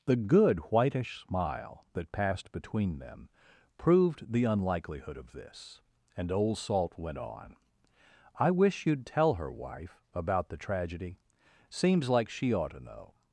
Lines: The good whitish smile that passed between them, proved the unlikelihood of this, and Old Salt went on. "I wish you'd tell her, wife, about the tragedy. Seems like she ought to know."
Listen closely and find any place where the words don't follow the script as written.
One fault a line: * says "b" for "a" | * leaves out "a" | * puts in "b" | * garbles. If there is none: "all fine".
all fine